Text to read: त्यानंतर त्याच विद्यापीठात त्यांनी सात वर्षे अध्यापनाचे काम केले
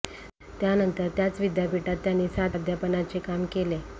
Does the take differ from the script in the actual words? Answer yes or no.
yes